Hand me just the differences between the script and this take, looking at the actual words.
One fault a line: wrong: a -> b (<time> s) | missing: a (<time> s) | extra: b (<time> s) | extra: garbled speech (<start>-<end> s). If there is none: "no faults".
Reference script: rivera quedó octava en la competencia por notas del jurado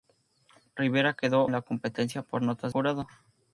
missing: octava (1.4 s)
missing: del (2.7 s)